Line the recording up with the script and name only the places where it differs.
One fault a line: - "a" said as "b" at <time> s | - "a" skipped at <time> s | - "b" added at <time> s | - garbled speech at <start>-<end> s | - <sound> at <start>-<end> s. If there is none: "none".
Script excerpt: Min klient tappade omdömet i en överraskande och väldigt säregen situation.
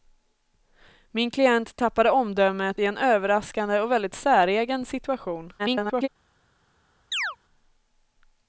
- garbled speech at 5.6-6.1 s
- chirp at 7.1-7.4 s